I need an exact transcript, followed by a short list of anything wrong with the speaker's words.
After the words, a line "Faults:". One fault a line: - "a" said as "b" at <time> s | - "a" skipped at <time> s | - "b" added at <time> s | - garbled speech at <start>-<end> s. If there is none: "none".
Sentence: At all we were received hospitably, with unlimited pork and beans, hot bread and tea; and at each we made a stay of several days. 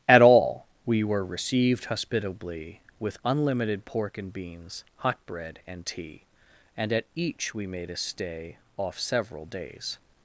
At all we were received hospitably, with unlimited pork and beans, hot bread and tea; and at each we made a stay off several days.
Faults:
- "of" said as "off" at 8.8 s